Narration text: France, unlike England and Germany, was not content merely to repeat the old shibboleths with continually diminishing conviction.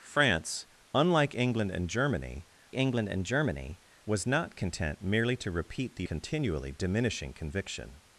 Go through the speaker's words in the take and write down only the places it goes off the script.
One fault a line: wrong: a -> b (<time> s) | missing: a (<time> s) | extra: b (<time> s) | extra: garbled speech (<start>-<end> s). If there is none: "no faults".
extra: England and Germany (2.7 s)
missing: old shibboleths with (6.1 s)